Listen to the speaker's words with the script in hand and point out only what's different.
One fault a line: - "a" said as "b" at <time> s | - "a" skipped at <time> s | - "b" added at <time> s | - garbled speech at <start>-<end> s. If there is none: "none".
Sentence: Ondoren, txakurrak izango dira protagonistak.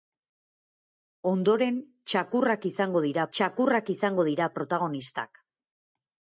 - "txakurrak izango dira" added at 3.4 s